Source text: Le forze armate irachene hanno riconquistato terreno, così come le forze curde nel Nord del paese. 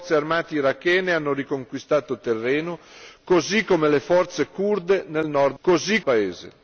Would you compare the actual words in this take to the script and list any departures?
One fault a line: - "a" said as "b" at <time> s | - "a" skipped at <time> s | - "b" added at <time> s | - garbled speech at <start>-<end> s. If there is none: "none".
- "del" said as "così" at 5.6 s